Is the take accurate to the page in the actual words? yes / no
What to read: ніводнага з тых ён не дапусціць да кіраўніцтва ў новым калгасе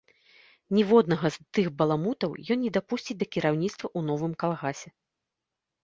no